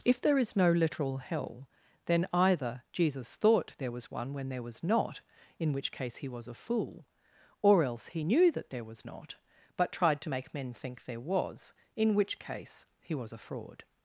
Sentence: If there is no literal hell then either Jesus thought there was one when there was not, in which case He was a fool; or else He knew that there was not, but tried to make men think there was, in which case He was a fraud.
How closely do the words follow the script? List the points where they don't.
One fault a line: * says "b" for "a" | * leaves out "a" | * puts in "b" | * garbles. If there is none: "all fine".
all fine